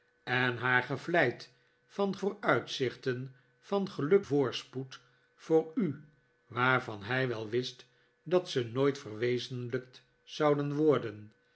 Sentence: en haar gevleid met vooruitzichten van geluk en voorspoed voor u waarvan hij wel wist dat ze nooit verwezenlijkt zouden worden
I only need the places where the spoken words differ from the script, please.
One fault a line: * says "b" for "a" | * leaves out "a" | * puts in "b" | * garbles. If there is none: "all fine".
* says "van" for "met"
* leaves out "en"